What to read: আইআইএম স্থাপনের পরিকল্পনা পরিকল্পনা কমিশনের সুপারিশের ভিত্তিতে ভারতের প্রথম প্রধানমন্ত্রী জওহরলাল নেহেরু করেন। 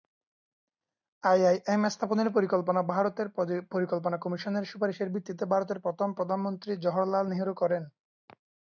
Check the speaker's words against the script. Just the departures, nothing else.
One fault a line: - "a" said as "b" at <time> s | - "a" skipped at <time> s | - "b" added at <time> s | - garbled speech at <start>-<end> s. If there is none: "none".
- "ভারতের" added at 2.9 s